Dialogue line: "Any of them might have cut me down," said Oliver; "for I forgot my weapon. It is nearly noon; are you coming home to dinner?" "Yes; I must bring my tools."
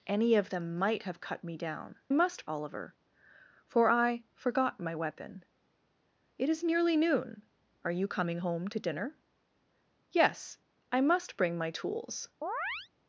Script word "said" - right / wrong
wrong